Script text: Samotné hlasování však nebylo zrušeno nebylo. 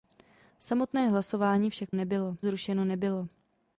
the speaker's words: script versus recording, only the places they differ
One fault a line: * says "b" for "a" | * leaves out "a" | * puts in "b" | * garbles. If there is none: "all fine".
all fine